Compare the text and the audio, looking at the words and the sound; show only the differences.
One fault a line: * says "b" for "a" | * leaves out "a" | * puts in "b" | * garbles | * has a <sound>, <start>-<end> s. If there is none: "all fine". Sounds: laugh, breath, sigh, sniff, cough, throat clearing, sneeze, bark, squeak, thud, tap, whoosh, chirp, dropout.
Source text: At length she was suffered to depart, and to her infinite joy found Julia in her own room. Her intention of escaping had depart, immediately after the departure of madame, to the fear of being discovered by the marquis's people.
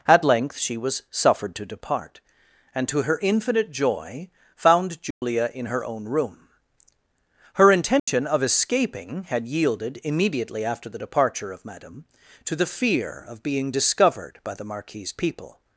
* has a dropout, 5.1-5.2 s
* has a dropout, 8.0-8.1 s
* says "yielded" for "depart"